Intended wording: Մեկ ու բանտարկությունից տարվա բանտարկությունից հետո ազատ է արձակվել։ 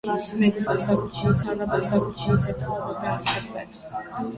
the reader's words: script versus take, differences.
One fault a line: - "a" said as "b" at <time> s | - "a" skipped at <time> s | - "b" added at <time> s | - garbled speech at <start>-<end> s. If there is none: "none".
none